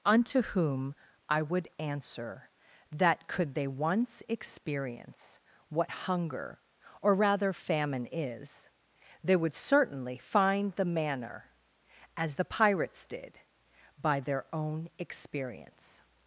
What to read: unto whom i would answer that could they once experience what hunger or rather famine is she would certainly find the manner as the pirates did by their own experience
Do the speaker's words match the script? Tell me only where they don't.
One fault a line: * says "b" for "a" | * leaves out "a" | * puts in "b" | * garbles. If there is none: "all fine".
* says "they" for "she"